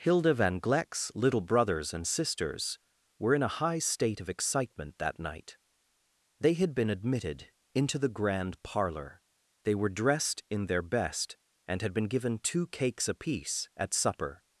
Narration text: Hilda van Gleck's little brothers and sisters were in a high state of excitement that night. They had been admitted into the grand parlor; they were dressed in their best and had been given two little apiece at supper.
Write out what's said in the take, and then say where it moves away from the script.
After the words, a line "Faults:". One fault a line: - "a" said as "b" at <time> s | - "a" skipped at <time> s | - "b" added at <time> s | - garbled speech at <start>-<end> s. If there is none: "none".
Hilda van Gleck's little brothers and sisters were in a high state of excitement that night. They had been admitted into the grand parlor; they were dressed in their best and had been given two cakes apiece at supper.
Faults:
- "little" said as "cakes" at 12.7 s